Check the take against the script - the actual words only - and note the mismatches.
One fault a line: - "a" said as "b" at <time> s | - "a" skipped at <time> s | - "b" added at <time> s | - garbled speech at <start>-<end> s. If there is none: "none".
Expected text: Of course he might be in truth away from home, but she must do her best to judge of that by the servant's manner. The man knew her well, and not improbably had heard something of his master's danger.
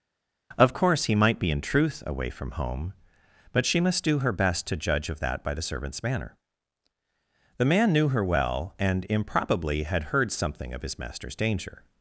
- "not" skipped at 9.1 s